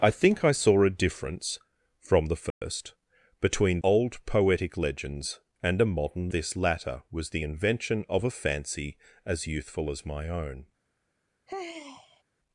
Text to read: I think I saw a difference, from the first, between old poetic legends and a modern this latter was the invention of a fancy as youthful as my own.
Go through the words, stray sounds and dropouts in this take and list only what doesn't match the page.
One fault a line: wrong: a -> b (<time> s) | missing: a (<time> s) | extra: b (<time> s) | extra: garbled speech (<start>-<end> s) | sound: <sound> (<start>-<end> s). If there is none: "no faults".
sound: dropout (2.5-2.6 s)
sound: sigh (11.5-12.2 s)